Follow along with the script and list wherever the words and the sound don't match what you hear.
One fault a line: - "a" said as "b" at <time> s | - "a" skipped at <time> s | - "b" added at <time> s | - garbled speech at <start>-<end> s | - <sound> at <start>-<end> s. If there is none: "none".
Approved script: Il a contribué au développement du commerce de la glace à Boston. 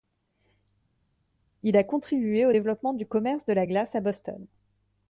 none